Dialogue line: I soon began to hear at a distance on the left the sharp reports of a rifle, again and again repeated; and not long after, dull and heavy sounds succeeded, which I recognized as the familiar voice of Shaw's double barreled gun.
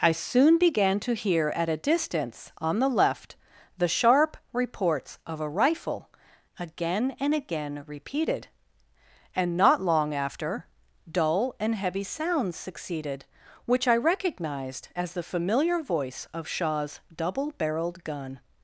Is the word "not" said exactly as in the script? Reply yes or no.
yes